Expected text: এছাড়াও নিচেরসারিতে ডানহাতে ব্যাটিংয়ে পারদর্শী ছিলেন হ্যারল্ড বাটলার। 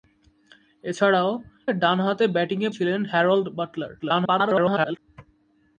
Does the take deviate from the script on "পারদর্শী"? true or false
true